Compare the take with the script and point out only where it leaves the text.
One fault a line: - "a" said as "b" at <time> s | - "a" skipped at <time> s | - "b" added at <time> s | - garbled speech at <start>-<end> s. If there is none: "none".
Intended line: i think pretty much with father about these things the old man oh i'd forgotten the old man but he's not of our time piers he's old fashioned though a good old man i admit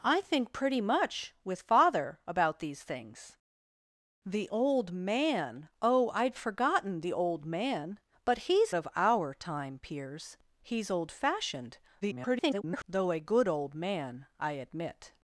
- "not" skipped at 8.7 s
- garbled speech at 12.0-12.8 s